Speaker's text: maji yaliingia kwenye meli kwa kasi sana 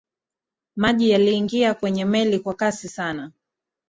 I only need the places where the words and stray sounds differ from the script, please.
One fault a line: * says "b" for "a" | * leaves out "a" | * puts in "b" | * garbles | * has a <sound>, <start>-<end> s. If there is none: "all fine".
all fine